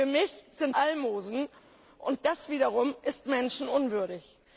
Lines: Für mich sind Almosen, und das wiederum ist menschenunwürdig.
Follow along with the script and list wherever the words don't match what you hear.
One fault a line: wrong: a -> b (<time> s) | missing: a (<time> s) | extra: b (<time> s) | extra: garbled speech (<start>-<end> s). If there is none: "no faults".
no faults